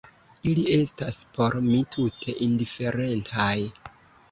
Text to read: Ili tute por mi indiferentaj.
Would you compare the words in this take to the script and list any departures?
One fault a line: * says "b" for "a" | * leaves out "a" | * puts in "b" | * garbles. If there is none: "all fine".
* says "estas" for "tute"
* puts in "tute"